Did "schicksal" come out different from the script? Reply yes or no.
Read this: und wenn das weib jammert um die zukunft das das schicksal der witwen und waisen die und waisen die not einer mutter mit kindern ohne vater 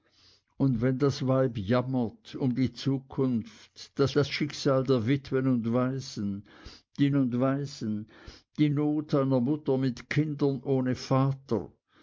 no